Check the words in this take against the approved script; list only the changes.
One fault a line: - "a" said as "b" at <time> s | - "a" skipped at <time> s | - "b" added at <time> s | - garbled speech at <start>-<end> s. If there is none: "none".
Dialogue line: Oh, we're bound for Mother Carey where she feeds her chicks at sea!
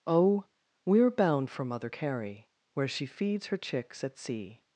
none